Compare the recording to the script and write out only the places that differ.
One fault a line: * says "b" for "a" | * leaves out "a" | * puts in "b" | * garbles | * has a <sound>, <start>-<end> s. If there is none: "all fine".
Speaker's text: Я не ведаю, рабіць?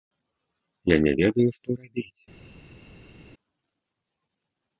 * puts in "што"